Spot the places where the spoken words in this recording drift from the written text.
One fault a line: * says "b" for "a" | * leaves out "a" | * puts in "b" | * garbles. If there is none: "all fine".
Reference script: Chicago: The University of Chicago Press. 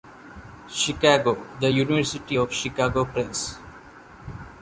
all fine